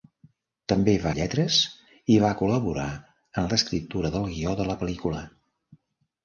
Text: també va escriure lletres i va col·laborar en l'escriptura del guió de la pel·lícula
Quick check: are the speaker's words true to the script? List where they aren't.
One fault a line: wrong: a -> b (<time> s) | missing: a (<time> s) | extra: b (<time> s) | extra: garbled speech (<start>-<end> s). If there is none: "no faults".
missing: escriure (1.1 s)